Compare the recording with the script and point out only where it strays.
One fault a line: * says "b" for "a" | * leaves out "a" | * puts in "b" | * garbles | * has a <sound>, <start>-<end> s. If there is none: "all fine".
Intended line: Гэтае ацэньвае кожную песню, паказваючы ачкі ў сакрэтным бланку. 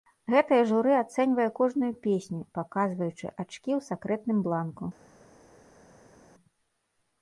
* puts in "журы"